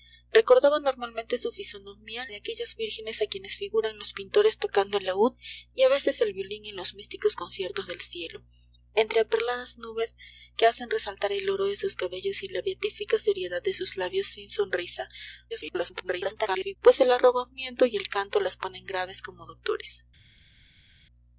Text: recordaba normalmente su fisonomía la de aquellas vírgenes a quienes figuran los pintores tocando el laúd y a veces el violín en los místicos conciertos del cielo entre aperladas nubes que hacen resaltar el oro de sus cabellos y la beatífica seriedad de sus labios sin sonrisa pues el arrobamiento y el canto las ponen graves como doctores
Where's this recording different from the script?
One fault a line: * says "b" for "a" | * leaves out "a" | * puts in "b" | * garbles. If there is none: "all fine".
* leaves out "la"
* garbles